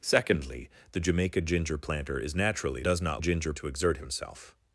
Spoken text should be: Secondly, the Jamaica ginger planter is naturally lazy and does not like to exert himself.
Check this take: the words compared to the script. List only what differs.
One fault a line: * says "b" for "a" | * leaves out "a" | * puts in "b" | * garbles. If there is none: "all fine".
* leaves out "lazy and"
* says "ginger" for "like"